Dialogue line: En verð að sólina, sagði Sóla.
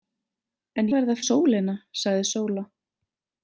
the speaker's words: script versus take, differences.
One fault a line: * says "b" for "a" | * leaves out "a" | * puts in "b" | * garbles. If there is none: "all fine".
all fine